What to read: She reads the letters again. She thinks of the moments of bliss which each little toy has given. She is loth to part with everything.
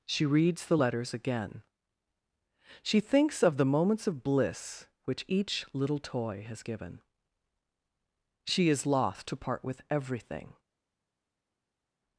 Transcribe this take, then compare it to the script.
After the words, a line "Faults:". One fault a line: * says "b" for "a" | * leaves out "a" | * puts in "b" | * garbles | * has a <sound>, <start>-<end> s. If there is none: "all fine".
She reads the letters again. She thinks of the moments of bliss which each little toy has given. She is loth to part with everything.
Faults:
all fine